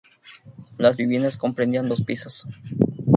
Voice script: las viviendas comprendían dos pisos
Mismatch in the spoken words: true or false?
false